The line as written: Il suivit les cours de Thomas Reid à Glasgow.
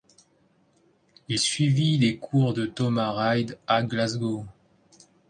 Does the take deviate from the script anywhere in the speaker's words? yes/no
no